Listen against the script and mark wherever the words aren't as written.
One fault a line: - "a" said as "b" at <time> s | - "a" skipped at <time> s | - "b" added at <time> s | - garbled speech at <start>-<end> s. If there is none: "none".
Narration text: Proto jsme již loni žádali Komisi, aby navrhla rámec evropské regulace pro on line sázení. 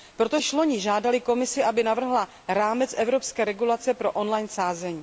- "jsme" skipped at 0.4 s